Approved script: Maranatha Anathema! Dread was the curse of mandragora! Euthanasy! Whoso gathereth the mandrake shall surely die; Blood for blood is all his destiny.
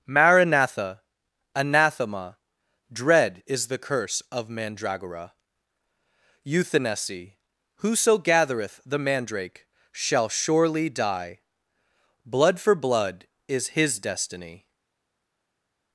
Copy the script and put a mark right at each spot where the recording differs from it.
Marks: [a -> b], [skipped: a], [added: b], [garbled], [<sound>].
Maranatha Anathema! Dread [was -> is] the curse of mandragora! Euthanasy! Whoso gathereth the mandrake shall surely die; Blood for blood is [skipped: all] his destiny.